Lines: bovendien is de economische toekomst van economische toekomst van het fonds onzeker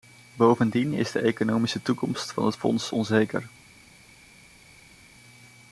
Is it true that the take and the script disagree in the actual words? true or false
true